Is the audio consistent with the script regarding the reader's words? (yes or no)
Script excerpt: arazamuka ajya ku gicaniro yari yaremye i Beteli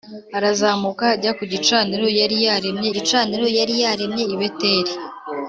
no